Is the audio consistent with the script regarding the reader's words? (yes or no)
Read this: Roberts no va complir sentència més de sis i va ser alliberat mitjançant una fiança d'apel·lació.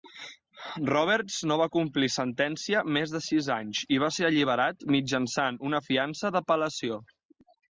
no